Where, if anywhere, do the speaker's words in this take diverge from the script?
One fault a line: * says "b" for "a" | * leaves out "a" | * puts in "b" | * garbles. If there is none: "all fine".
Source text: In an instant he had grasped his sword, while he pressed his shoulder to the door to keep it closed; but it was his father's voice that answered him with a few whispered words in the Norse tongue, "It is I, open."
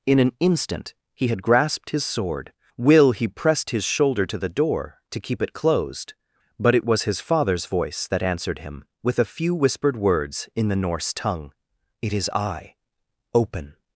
* says "will" for "while"